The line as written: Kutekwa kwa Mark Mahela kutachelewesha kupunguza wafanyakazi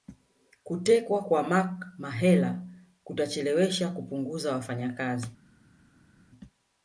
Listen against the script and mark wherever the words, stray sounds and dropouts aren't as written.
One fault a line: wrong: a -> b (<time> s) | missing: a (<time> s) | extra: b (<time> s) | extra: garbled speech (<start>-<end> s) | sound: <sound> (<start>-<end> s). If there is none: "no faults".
no faults